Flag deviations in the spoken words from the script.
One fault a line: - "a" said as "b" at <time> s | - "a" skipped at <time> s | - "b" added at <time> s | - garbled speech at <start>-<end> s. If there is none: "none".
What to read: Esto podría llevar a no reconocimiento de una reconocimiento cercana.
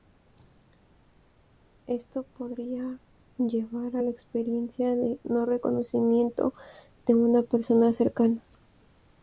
- "la experiencia de" added at 4.0 s
- "reconocimiento" said as "persona" at 7.4 s